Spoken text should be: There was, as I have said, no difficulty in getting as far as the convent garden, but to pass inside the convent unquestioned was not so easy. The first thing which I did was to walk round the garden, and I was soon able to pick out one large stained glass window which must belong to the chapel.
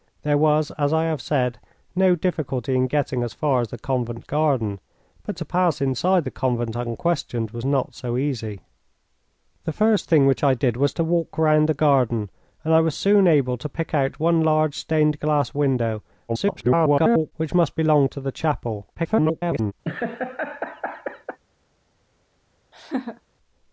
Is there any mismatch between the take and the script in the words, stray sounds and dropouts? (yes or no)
yes